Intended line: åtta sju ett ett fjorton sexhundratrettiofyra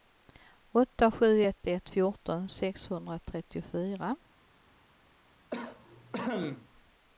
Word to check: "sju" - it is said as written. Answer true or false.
true